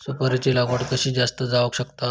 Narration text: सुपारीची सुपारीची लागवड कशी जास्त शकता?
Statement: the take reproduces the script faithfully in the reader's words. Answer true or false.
false